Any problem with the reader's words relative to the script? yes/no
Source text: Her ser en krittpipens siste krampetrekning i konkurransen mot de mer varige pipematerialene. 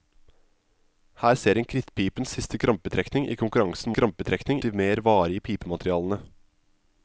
yes